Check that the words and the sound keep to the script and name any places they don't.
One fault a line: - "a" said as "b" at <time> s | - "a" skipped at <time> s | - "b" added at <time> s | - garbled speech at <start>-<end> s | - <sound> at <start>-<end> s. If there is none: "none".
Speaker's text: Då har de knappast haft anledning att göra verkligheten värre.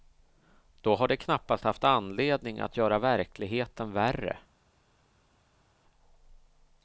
none